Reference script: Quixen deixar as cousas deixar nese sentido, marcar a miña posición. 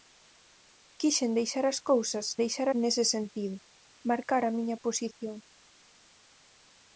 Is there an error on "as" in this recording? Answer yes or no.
no